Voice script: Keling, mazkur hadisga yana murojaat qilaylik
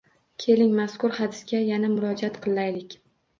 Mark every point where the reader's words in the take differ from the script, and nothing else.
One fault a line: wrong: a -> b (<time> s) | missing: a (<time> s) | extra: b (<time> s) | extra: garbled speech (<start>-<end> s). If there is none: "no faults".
no faults